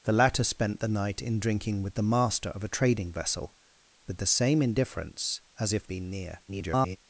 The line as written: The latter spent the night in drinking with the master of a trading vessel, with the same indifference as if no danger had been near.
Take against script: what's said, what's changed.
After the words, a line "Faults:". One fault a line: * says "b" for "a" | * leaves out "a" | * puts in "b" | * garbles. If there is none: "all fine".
The latter spent the night in drinking with the master of a trading vessel, with the same indifference as if been near. [garbled]
Faults:
* leaves out "no danger had"
* garbles